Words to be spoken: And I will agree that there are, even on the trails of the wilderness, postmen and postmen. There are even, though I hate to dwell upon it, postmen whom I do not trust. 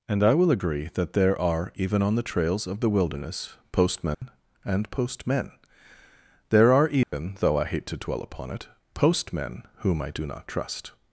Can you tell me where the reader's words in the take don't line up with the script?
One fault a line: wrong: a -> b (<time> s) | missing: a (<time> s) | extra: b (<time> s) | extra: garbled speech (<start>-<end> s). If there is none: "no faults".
no faults